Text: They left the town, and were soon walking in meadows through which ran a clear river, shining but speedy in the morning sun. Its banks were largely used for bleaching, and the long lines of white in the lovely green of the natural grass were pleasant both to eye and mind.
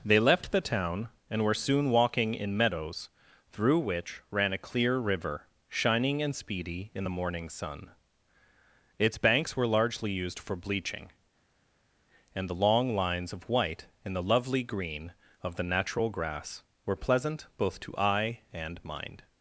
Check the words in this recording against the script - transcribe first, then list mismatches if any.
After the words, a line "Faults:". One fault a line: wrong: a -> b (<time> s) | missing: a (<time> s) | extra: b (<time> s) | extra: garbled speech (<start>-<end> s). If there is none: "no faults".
They left the town, and were soon walking in meadows through which ran a clear river, shining and speedy in the morning sun. Its banks were largely used for bleaching, and the long lines of white in the lovely green of the natural grass were pleasant both to eye and mind.
Faults:
wrong: but -> and (6.2 s)